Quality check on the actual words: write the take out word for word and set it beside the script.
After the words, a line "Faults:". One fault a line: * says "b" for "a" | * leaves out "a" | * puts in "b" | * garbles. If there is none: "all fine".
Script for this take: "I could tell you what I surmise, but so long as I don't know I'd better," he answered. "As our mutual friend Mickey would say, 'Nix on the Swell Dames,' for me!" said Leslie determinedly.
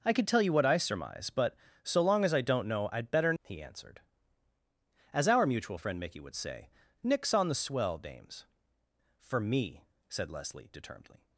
"I could tell you what I surmise, but so long as I don't know I'd better," he answered. "As our mutual friend Mickey would say, 'Nix on the Swell Dames,' for me!" said Leslie determinedly.
Faults:
all fine